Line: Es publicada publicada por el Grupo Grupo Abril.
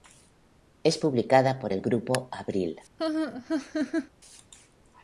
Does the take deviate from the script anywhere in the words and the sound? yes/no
yes